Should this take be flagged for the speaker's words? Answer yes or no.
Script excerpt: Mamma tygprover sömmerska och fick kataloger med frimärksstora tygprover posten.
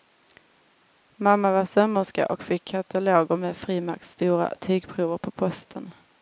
yes